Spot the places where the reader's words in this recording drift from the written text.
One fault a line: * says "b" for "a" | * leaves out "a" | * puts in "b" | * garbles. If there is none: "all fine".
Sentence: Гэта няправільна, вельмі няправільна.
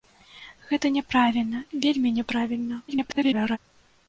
* garbles